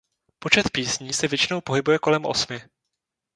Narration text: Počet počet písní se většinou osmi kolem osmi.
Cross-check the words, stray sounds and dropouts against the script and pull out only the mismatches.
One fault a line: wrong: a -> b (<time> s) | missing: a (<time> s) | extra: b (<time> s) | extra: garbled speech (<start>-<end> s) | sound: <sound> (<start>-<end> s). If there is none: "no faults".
missing: počet (0.7 s)
wrong: osmi -> pohybuje (1.6 s)